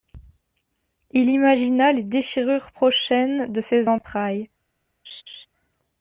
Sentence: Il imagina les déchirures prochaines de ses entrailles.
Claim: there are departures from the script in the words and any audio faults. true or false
true